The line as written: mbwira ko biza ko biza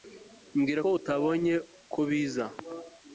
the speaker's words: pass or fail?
fail